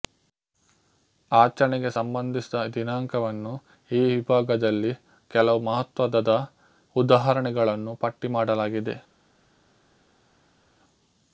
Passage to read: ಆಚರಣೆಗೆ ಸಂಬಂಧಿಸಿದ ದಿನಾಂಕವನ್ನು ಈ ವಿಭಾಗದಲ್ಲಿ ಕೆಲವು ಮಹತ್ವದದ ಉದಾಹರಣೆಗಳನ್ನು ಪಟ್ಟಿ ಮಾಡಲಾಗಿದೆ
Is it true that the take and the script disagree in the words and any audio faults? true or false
false